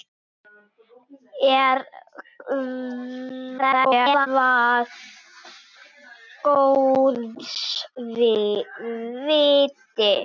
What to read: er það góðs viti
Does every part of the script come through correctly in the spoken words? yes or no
no